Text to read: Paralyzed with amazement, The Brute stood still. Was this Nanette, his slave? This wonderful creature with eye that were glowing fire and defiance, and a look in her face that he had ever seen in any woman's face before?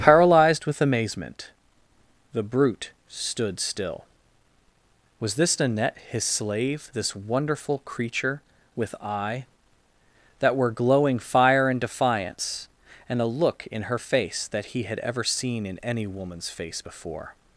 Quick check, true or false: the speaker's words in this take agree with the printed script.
true